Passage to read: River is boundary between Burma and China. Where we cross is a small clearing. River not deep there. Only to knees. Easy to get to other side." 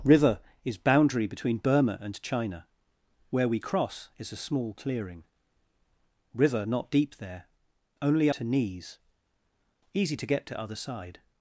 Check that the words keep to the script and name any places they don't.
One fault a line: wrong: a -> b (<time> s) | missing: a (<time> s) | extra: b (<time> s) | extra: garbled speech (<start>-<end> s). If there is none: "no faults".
no faults